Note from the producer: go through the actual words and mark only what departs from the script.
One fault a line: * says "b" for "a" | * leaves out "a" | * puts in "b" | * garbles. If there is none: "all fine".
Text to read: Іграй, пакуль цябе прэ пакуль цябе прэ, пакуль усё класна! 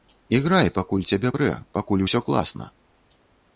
* leaves out "цябе прэ пакуль"